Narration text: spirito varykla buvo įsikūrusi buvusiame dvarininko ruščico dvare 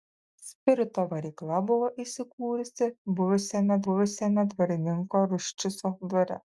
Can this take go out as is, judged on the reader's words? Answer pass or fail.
fail